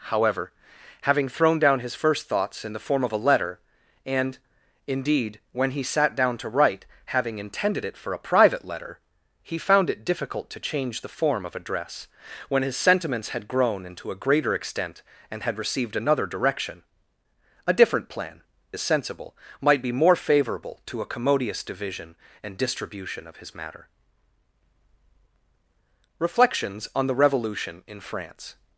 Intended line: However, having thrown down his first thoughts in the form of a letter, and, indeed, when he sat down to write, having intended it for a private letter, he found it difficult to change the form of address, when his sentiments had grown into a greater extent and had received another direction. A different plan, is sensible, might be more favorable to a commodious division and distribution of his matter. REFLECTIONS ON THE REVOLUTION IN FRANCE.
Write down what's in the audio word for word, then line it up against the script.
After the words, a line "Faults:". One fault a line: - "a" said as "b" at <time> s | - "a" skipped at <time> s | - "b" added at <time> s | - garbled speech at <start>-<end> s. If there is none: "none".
However, having thrown down his first thoughts in the form of a letter, and, indeed, when he sat down to write, having intended it for a private letter, he found it difficult to change the form of address, when his sentiments had grown into a greater extent and had received another direction. A different plan, is sensible, might be more favorable to a commodious division and distribution of his matter. REFLECTIONS ON THE REVOLUTION IN FRANCE.
Faults:
none